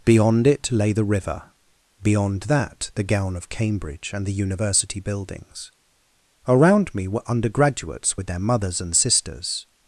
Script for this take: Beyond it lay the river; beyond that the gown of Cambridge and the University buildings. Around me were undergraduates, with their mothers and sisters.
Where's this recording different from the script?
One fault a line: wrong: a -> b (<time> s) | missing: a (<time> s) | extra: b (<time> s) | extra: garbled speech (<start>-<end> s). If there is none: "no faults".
no faults